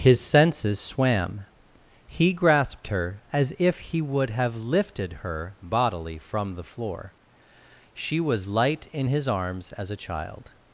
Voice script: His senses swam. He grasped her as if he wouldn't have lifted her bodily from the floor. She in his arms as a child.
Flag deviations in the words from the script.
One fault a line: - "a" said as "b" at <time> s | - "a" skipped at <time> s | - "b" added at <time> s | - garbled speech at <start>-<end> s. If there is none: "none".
- "wouldn't" said as "would" at 4.0 s
- "was light" added at 8.2 s